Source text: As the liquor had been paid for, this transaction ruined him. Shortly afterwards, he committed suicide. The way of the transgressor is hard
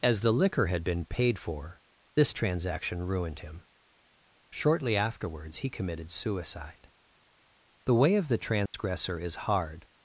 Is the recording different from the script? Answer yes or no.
no